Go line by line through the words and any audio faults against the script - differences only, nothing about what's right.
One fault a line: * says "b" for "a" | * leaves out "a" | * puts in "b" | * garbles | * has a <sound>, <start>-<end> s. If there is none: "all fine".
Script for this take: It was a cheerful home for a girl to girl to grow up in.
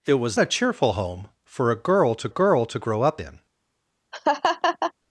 * has a laugh, 4.1-4.9 s